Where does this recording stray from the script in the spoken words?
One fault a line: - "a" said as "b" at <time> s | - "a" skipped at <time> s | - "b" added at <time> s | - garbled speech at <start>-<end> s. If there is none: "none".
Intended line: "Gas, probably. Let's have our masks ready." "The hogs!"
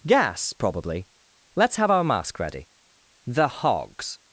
- "masks" said as "mask" at 2.0 s